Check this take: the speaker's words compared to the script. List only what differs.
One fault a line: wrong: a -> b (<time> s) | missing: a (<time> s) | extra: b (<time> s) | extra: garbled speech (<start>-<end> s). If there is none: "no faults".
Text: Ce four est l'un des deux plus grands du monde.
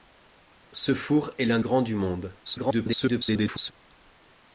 missing: des deux plus (1.6 s)
extra: garbled speech (2.5-3.7 s)